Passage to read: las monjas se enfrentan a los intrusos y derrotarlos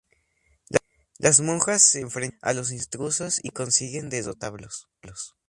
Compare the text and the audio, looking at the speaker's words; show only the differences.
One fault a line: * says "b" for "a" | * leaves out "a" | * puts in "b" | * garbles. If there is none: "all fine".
* puts in "consiguen"